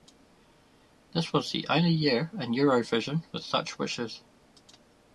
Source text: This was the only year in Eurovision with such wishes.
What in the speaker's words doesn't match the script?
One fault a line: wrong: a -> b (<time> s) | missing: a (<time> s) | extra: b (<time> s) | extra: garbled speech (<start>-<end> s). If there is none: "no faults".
no faults